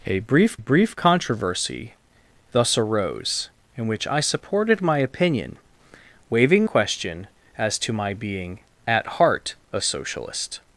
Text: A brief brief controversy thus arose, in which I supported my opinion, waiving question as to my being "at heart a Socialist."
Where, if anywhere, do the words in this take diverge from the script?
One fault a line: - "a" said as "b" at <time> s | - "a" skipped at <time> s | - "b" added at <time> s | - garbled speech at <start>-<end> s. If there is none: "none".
none